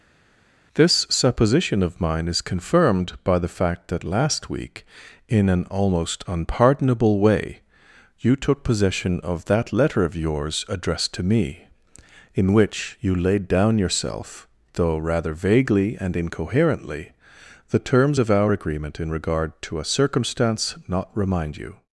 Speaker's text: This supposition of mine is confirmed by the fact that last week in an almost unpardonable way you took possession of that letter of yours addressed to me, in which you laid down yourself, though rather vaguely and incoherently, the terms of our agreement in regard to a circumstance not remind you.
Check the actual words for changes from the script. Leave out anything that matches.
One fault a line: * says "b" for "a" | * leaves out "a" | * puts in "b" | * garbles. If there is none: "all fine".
all fine